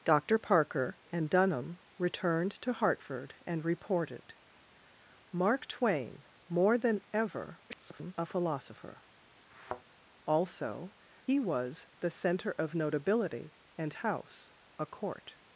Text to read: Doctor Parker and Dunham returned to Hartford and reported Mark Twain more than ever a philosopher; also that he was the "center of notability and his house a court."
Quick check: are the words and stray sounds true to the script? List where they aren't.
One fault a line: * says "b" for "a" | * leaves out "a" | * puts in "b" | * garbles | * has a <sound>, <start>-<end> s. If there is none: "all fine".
* garbles
* has a thud, 9.5-9.8 s
* leaves out "that"
* leaves out "his"